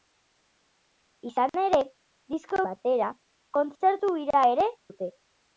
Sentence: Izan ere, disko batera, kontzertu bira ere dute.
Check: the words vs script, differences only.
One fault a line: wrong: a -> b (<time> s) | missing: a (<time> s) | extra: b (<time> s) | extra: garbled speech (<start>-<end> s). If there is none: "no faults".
no faults